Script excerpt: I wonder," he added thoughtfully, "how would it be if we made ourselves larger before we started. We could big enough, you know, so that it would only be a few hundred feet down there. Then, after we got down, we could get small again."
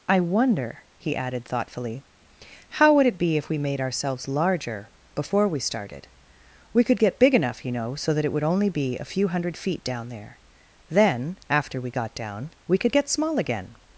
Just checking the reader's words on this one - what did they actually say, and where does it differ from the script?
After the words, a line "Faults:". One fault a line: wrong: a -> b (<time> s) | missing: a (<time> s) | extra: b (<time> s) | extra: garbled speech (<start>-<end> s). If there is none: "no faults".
I wonder," he added thoughtfully, "how would it be if we made ourselves larger before we started. We could get big enough, you know, so that it would only be a few hundred feet down there. Then, after we got down, we could get small again."
Faults:
extra: get (7.0 s)